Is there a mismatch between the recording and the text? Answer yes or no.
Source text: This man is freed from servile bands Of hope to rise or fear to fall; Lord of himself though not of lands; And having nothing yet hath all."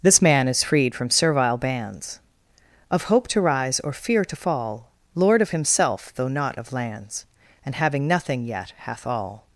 no